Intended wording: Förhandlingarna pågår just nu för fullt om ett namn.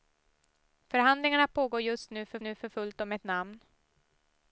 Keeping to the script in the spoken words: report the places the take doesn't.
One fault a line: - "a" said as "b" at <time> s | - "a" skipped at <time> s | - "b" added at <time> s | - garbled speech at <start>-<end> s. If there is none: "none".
- "nu för" added at 2.4 s